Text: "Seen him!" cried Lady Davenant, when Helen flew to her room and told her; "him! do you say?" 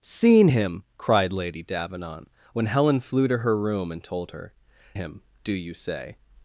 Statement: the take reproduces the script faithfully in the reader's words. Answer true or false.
true